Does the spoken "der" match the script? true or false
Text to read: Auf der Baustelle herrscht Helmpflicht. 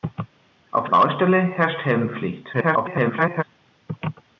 false